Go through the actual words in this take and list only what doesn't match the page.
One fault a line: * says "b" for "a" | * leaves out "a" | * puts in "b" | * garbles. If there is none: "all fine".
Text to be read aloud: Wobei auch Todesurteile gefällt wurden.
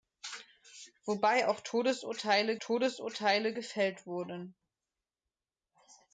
* puts in "Todesurteile"